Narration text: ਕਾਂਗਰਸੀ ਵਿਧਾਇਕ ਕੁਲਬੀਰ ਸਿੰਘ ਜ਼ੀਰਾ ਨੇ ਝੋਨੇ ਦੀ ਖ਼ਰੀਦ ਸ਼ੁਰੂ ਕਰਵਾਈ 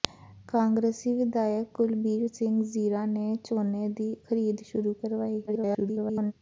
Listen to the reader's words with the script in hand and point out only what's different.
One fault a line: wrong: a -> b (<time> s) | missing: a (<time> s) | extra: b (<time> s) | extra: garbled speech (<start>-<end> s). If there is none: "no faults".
extra: garbled speech (5.5-6.3 s)